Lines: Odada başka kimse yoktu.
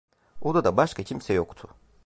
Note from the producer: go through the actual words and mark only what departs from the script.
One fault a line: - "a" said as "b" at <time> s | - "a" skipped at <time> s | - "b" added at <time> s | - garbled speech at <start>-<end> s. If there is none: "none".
none